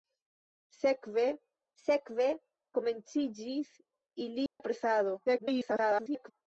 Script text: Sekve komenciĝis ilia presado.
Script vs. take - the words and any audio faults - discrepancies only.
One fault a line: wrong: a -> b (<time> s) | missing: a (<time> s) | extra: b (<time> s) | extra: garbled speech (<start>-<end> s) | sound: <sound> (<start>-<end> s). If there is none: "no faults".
extra: sekve (1.8 s)
sound: dropout (4.5-4.6 s)
extra: garbled speech (5.3-6.3 s)